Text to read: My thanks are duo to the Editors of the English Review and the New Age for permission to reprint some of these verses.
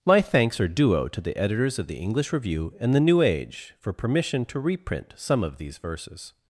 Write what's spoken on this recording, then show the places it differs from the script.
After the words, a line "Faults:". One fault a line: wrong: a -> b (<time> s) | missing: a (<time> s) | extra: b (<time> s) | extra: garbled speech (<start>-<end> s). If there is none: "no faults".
My thanks are duo to the Editors of the English Review and the New Age for permission to reprint some of these verses.
Faults:
no faults